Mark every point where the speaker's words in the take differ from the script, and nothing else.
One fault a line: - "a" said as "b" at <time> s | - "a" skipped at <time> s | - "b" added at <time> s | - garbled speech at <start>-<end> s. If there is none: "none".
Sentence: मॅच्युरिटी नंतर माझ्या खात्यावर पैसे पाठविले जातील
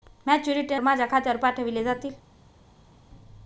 - "नंतर" skipped at 0.8 s
- "पैसे" skipped at 1.4 s